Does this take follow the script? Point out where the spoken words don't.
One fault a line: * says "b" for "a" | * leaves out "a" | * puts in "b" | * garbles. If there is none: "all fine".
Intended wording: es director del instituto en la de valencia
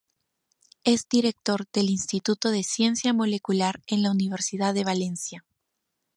* puts in "de ciencia molecular"
* puts in "universidad"